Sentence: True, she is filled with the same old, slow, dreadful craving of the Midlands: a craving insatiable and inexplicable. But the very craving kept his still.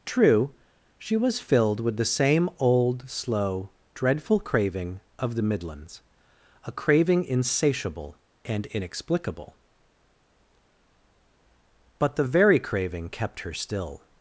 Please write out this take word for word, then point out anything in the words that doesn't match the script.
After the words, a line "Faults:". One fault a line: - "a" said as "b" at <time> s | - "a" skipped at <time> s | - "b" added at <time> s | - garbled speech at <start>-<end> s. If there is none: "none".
True, she was filled with the same old, slow, dreadful craving of the Midlands: a craving insatiable and inexplicable. But the very craving kept her still.
Faults:
- "is" said as "was" at 1.2 s
- "his" said as "her" at 13.4 s